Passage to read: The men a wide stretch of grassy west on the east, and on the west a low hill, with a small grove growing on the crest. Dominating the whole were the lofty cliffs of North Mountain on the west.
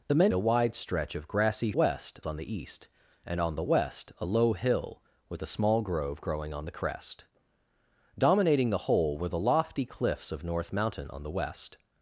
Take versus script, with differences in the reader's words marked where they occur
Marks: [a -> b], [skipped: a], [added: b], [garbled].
The men a wide stretch of grassy west on the east, and on the west a low hill, with a small grove growing on the crest. Dominating the whole were the lofty cliffs of North Mountain on the west.